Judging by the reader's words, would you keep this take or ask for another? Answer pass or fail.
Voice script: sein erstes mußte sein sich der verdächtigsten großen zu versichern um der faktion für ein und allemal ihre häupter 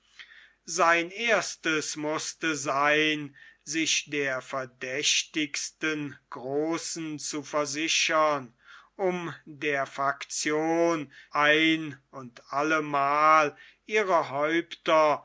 fail